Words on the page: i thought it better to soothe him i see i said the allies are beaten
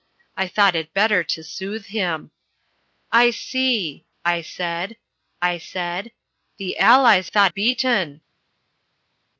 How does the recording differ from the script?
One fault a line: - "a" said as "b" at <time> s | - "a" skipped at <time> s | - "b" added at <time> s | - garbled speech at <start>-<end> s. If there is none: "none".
- "i said" added at 5.4 s
- "are" said as "thought" at 7.2 s